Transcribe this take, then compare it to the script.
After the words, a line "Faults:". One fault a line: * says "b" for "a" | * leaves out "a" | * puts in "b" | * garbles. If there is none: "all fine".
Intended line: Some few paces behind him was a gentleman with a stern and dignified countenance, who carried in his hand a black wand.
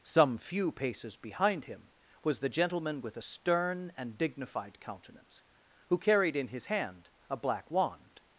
Some few paces behind him was the gentleman with a stern and dignified countenance, who carried in his hand a black wand.
Faults:
* says "the" for "a"